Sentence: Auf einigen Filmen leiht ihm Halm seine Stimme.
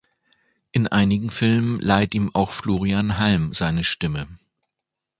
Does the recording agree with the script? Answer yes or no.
no